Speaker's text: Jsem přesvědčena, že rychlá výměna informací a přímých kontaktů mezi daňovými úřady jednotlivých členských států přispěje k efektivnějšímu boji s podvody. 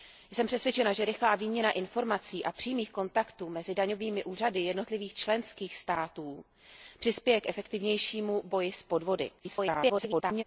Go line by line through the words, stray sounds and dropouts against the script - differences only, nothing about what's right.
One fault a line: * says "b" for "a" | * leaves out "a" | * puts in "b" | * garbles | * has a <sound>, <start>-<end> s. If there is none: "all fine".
* garbles